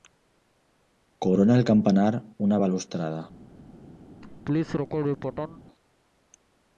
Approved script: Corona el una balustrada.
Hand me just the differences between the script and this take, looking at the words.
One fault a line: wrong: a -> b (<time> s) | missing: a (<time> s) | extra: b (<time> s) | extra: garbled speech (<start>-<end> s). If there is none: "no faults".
extra: campanar (1.7 s)